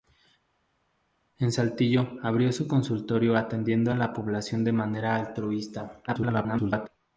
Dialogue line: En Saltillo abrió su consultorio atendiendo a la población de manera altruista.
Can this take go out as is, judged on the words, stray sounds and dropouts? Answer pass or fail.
fail